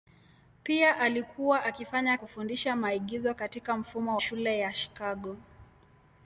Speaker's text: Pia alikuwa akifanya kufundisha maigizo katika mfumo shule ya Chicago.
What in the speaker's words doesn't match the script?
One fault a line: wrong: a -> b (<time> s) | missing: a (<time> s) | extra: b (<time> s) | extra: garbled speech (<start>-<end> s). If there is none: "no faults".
no faults